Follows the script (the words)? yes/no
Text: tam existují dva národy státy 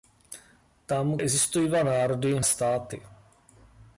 yes